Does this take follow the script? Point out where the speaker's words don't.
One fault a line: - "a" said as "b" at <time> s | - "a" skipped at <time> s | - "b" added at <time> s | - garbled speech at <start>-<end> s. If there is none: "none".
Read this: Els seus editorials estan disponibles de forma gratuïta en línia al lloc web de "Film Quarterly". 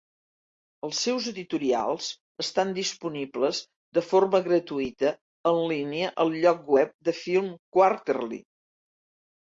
none